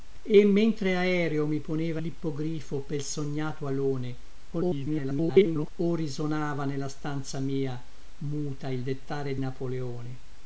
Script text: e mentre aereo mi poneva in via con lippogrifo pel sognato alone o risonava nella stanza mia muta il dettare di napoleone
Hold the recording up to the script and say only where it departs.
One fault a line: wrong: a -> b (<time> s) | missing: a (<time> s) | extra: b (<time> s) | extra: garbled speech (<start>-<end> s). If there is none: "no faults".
missing: in via con (2.0 s)
extra: garbled speech (4.5-5.7 s)
missing: di (9.3 s)